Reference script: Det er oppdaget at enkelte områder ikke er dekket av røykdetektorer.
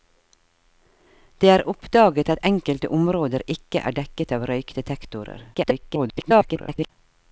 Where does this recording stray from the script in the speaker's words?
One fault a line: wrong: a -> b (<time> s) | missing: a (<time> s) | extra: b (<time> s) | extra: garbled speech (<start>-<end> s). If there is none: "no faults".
extra: garbled speech (5.5-6.9 s)